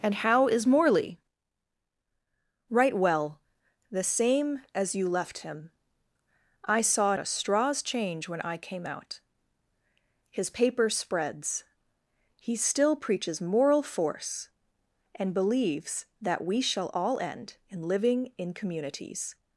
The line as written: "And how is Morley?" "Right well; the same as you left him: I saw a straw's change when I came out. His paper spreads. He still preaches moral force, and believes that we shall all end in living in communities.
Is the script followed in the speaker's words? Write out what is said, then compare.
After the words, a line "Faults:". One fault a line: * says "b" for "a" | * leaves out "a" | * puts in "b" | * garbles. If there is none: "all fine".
"And how is Morley?" "Right well; the same as you left him: I saw a straw's change when I came out. His paper spreads. He still preaches moral force, and believes that we shall all end in living in communities.
Faults:
all fine